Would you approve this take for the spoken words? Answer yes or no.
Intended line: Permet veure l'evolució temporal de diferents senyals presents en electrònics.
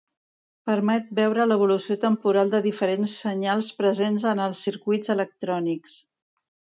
no